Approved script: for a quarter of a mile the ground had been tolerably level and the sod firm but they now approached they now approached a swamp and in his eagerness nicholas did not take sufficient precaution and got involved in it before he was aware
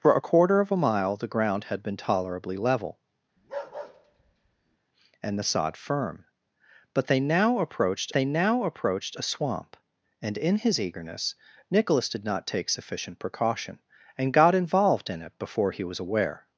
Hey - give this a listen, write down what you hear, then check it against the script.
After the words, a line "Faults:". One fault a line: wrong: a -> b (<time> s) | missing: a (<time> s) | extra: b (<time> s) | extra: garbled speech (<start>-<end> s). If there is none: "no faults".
for a quarter of a mile the ground had been tolerably level and the sod firm but they now approached they now approached a swamp and in his eagerness nicholas did not take sufficient precaution and got involved in it before he was aware
Faults:
no faults